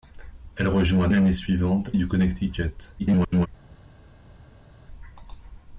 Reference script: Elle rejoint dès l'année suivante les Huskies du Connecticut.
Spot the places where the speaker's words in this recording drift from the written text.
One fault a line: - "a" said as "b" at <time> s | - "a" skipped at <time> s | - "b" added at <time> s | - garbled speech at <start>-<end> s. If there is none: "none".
- "dès" skipped at 1.1 s
- "les Huskies" skipped at 1.9 s
- garbled speech at 3.0-3.5 s